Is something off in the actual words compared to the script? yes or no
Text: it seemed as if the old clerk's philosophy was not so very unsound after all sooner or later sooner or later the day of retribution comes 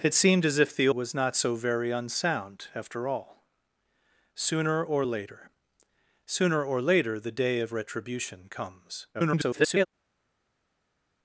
yes